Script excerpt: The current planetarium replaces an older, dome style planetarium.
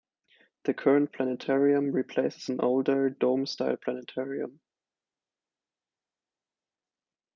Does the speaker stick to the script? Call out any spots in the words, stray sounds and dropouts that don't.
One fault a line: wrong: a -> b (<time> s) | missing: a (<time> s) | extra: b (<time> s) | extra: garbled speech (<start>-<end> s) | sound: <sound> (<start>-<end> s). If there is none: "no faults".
no faults